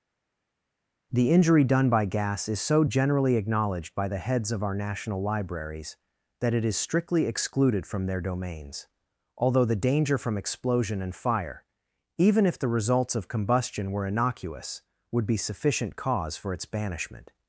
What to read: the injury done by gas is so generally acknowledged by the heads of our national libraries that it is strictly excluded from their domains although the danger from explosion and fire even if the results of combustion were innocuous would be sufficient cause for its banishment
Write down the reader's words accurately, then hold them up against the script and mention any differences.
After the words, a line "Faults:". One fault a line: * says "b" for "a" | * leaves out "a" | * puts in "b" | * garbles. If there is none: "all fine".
the injury done by gas is so generally acknowledged by the heads of our national libraries that it is strictly excluded from their domains although the danger from explosion and fire even if the results of combustion were innocuous would be sufficient cause for its banishment
Faults:
all fine